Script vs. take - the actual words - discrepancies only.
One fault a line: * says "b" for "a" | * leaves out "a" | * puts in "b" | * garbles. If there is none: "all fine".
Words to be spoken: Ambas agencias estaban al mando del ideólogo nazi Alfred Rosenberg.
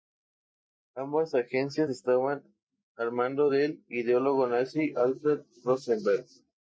all fine